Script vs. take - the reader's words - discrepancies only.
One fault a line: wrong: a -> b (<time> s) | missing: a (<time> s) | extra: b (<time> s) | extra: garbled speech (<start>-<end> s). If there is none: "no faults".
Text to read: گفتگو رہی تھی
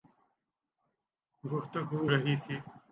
no faults